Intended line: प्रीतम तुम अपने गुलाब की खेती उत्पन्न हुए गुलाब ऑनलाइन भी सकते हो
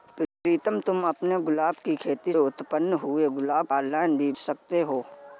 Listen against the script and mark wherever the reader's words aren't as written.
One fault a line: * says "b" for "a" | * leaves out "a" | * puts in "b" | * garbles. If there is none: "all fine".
all fine